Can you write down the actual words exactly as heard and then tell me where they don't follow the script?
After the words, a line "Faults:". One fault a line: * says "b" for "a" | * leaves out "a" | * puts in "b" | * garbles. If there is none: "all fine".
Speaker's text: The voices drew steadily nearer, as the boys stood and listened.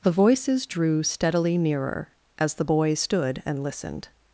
The voices drew steadily nearer, as the boys stood and listened.
Faults:
all fine